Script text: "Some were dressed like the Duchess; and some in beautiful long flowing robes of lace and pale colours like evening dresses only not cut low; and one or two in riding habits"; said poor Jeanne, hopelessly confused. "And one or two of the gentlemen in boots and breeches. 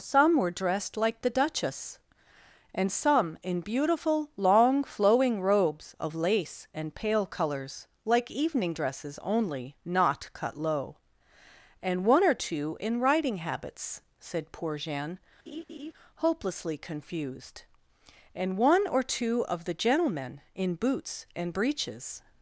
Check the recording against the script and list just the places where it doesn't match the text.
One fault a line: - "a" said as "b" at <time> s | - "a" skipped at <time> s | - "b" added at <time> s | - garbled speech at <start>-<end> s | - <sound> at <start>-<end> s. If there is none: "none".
- laugh at 15.5-15.9 s